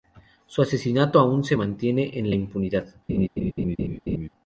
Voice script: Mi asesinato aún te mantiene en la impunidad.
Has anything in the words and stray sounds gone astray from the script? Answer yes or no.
yes